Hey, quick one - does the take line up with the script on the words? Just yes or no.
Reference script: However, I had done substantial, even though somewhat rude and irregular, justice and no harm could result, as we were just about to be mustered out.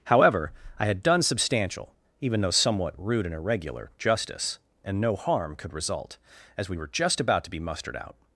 yes